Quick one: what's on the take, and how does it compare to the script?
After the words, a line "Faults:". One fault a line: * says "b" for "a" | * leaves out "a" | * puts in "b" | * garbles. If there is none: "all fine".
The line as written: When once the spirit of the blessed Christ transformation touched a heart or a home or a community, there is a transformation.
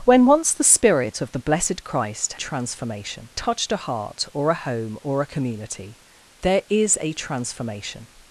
When once the spirit of the blessed Christ transformation touched a heart or a home or a community, there is a transformation.
Faults:
all fine